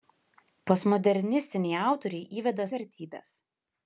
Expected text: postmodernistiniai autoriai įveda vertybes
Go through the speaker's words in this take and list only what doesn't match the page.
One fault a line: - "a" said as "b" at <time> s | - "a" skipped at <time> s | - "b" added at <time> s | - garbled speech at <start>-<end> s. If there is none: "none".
none